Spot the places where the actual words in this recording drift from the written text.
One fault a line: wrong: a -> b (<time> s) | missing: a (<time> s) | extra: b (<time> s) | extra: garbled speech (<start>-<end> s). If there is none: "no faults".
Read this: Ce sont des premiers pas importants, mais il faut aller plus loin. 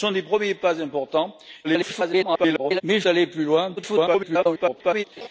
extra: garbled speech (1.6-2.8 s)
missing: faut (3.0 s)
extra: garbled speech (3.8-5.0 s)